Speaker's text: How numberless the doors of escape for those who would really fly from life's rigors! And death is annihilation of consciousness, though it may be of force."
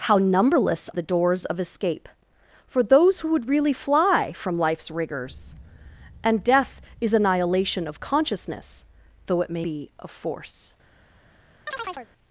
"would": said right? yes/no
yes